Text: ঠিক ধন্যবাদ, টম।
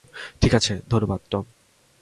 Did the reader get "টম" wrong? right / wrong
right